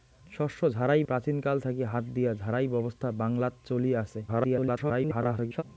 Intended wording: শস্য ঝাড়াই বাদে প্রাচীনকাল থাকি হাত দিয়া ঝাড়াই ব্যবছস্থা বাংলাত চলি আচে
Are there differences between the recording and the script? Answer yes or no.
yes